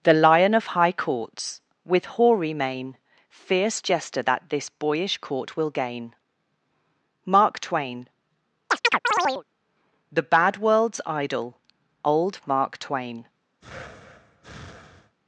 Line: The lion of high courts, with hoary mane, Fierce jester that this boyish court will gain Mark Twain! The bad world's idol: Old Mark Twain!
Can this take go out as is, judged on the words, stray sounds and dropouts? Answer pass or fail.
fail